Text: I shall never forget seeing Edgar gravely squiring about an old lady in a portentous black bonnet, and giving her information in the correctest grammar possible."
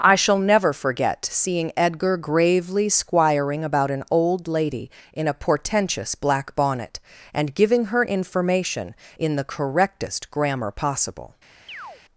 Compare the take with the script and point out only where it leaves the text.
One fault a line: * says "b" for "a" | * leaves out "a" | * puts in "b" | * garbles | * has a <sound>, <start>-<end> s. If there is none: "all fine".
* has a chirp, 11.7-12.0 s